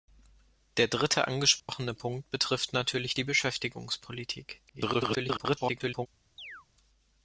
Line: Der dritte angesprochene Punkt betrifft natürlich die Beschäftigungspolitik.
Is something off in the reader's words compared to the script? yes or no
yes